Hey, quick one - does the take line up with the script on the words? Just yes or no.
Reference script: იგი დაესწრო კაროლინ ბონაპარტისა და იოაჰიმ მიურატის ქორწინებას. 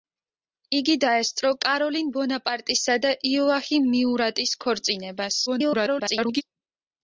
no